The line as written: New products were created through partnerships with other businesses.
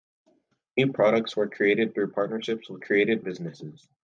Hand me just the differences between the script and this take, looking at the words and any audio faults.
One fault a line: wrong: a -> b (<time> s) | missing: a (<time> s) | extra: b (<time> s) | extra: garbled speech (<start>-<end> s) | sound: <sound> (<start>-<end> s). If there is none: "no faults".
wrong: other -> created (2.8 s)